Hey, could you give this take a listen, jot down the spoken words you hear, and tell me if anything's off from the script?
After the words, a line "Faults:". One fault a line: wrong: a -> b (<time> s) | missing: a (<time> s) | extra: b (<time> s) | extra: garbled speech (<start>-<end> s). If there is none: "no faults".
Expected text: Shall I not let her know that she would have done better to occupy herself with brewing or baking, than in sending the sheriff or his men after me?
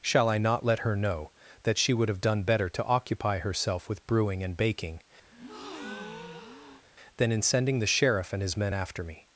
Shall I not let her know that she would have done better to occupy herself with brewing and baking, than in sending the sheriff and his men after me?
Faults:
wrong: or -> and (4.4 s)
wrong: or -> and (8.3 s)